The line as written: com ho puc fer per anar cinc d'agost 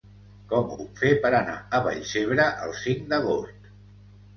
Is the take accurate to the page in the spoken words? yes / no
no